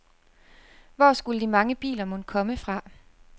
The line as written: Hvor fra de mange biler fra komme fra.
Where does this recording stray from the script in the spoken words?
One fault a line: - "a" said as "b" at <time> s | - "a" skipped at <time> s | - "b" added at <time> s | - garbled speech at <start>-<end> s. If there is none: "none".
- "fra" said as "skulle" at 1.1 s
- "fra" said as "mon" at 2.0 s